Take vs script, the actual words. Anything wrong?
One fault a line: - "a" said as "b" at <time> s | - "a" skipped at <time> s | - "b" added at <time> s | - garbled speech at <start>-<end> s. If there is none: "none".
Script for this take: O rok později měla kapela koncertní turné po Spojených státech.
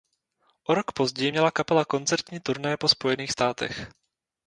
none